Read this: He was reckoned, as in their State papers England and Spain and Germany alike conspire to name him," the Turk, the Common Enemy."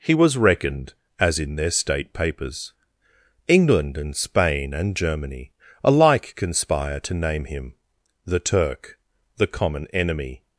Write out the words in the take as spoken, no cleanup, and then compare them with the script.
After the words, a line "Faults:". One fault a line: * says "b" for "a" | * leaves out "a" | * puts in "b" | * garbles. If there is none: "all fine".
He was reckoned, as in their State papers England and Spain and Germany alike conspire to name him," the Turk, the Common Enemy."
Faults:
all fine